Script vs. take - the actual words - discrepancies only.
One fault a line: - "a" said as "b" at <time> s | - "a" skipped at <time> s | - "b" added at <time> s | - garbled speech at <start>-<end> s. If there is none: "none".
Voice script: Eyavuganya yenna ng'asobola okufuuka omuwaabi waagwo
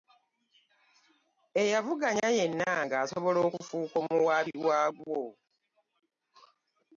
none